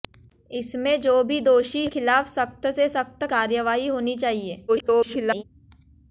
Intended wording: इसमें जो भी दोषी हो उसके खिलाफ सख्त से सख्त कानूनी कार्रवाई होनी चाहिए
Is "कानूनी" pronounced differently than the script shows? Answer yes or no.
yes